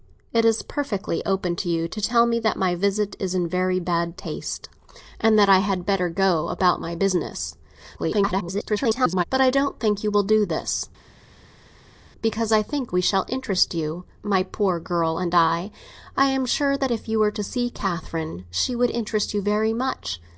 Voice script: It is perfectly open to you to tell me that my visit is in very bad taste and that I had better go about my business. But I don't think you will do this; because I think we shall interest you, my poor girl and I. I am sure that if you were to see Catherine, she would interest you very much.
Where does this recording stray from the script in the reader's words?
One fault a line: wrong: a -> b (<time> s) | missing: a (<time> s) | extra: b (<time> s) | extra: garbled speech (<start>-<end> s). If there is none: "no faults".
extra: garbled speech (8.0-9.2 s)